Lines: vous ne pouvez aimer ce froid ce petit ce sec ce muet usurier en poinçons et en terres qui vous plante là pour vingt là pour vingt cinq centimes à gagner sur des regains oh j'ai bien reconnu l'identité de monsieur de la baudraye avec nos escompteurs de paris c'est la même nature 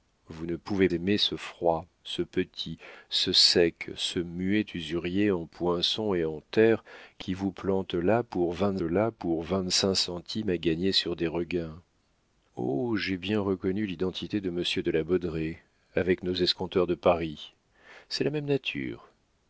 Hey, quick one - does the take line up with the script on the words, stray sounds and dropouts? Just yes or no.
yes